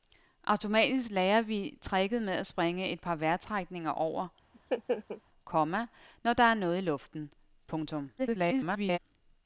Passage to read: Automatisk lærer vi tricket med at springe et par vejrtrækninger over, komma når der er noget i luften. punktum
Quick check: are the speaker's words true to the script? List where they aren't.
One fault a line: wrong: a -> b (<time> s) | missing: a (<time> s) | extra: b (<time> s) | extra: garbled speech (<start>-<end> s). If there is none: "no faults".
extra: garbled speech (8.2-9.0 s)